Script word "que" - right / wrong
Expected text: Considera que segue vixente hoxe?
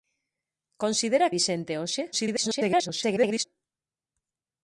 wrong